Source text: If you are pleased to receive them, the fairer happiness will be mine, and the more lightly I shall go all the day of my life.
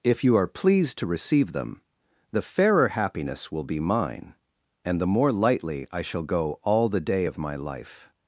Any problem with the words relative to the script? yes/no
no